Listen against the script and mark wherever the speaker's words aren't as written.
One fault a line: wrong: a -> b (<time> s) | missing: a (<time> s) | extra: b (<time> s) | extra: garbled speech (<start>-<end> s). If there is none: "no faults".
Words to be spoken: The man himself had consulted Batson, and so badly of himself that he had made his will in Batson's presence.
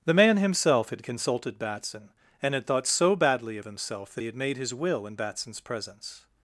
extra: had thought (2.5 s)